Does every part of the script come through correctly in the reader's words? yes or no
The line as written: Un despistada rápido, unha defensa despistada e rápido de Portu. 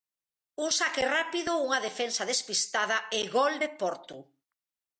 no